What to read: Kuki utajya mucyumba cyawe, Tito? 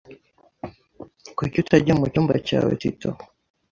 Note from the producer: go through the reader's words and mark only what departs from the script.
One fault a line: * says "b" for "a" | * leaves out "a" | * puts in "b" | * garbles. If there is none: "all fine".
all fine